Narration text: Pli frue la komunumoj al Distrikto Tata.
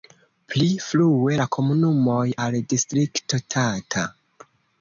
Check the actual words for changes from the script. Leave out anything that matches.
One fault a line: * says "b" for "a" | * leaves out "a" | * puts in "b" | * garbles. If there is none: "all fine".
all fine